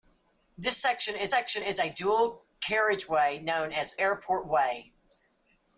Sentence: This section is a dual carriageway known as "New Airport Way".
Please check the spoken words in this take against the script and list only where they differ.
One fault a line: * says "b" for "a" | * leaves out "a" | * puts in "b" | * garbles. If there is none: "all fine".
* puts in "section is"
* leaves out "New"